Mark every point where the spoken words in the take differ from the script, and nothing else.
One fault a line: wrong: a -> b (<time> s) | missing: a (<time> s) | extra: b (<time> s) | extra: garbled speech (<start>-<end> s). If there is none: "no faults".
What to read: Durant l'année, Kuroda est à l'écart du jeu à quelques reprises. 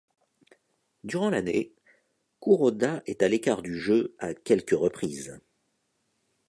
no faults